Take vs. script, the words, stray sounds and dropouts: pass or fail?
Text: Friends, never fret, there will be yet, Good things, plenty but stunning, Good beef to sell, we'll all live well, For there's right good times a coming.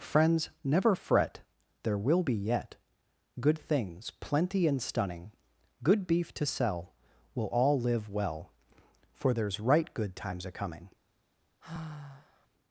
fail